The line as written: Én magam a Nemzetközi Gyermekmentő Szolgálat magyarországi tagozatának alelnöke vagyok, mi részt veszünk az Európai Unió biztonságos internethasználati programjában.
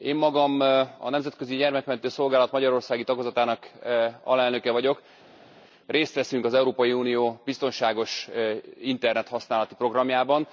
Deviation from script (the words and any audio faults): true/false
true